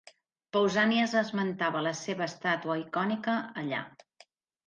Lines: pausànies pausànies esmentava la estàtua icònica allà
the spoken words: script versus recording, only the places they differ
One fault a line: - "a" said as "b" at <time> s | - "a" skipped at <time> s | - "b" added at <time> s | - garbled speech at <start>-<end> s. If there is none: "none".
- "pausànies" skipped at 1.1 s
- "seva" added at 2.0 s